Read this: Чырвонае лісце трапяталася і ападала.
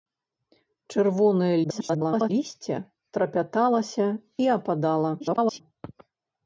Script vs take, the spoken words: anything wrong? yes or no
yes